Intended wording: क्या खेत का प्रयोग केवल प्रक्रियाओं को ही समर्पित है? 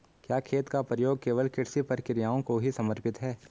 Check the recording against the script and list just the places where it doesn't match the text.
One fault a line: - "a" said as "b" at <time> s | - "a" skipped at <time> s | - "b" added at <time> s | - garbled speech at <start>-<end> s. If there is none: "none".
- "कृषि" added at 1.5 s